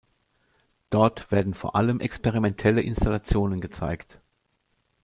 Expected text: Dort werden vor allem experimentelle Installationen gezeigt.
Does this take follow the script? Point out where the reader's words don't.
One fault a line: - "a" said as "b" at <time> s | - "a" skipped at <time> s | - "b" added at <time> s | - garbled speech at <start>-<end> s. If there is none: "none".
none